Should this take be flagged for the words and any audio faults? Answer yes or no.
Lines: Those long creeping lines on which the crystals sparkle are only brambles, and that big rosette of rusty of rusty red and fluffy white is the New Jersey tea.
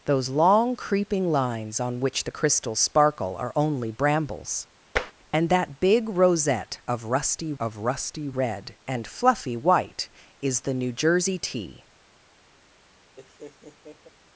yes